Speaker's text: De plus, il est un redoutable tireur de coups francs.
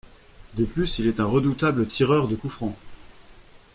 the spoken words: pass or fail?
pass